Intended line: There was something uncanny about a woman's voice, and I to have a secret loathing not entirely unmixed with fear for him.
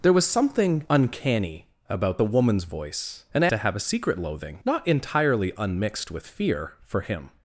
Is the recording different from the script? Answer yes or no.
no